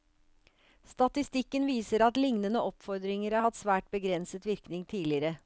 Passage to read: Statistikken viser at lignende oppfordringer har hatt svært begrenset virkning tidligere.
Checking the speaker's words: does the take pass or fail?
pass